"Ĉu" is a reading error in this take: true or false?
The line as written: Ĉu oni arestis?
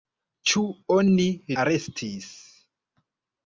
false